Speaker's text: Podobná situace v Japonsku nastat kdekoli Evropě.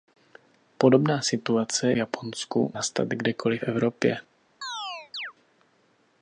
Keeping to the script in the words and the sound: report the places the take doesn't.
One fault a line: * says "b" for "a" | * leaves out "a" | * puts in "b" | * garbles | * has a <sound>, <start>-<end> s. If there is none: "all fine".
* has a chirp, 4.6-5.3 s